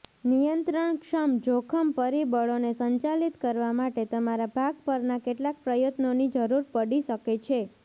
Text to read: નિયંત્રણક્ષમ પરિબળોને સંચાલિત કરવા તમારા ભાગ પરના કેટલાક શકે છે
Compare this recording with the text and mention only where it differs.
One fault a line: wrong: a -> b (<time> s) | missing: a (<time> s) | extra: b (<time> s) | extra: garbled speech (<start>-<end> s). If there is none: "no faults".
extra: જોખમ (1.4 s)
extra: માટે (3.8 s)
extra: પ્રયત્નોની જરૂર પડી (5.6 s)